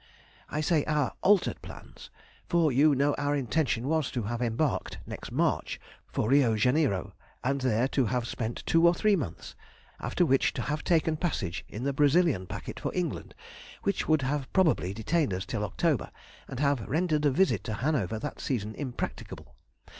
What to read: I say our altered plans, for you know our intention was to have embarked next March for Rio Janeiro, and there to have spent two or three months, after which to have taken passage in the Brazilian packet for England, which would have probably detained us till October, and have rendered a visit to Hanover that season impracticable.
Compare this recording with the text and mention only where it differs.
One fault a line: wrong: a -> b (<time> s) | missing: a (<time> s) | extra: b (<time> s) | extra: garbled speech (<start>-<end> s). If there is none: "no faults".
no faults